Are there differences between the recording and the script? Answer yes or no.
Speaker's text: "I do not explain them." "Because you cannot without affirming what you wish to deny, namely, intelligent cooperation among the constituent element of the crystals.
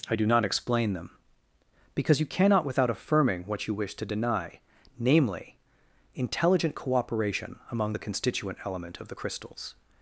no